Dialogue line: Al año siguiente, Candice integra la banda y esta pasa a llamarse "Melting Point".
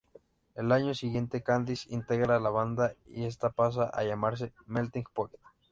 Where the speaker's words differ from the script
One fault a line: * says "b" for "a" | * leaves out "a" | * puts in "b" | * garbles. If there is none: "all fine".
all fine